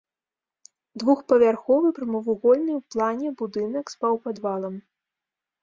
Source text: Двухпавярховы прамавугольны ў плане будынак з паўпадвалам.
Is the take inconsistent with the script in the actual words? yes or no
no